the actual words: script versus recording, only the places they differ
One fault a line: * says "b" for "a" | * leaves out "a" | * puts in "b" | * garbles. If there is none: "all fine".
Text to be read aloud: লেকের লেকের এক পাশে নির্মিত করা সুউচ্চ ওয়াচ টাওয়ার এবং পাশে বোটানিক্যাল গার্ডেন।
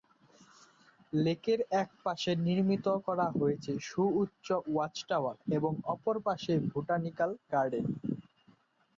* leaves out "লেকের"
* puts in "হয়েছে"
* puts in "অপর"